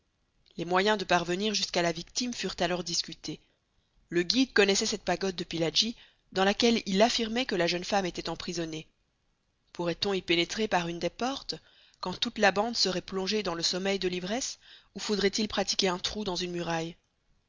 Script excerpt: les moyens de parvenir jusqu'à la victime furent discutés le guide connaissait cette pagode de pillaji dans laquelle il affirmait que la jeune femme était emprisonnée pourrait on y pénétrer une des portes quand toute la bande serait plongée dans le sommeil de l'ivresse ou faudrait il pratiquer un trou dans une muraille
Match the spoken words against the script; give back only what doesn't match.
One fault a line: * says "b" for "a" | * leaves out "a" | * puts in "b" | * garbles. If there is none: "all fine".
* puts in "alors"
* puts in "par"